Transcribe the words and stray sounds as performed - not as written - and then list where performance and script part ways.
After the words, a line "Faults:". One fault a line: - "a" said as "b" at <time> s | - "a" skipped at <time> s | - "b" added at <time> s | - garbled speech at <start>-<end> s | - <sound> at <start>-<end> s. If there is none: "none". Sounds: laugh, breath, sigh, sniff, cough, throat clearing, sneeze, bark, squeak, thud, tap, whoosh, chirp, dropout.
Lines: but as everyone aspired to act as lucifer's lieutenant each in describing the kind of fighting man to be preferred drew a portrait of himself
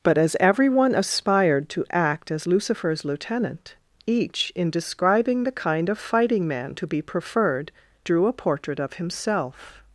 but as everyone aspired to act as lucifer's lieutenant each in describing the kind of fighting man to be preferred drew a portrait of himself
Faults:
none